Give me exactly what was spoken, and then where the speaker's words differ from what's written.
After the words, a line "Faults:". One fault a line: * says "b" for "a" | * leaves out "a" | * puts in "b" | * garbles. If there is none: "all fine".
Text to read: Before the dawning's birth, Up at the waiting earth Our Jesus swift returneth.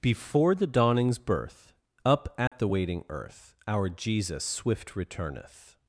Before the dawning's birth, Up at the waiting earth Our Jesus swift returneth.
Faults:
all fine